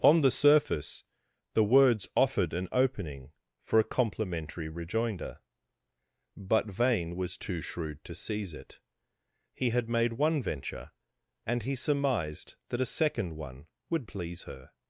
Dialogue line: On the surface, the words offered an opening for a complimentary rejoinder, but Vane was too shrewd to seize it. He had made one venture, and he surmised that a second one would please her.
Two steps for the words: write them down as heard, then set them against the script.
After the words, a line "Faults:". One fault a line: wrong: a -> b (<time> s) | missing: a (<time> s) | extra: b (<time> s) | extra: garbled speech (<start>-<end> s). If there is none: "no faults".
On the surface, the words offered an opening for a complimentary rejoinder, but Vane was too shrewd to seize it. He had made one venture, and he surmised that a second one would please her.
Faults:
no faults